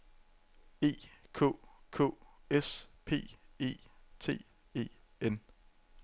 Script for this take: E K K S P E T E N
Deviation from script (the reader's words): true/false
false